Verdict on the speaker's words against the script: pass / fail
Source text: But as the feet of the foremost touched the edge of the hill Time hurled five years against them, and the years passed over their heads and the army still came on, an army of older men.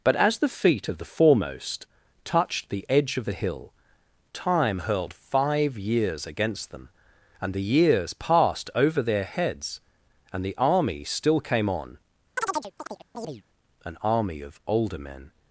pass